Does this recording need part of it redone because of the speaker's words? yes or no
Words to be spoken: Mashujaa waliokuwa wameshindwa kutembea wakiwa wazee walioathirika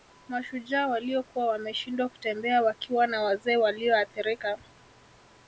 yes